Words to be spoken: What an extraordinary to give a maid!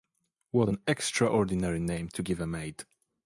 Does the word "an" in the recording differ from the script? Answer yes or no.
no